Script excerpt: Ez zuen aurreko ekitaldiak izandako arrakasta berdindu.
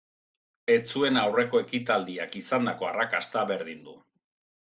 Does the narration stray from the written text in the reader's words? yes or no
no